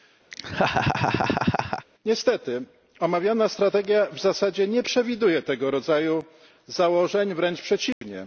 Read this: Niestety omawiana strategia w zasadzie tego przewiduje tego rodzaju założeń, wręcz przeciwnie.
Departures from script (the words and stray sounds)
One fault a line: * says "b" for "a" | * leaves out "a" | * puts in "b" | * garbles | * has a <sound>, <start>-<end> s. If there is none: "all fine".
* has a laugh, 0.3-1.9 s
* says "nie" for "tego"
* has a dropout, 7.9-8.0 s